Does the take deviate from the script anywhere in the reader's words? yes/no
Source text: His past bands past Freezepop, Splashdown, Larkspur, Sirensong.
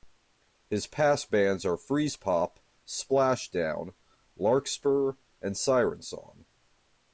yes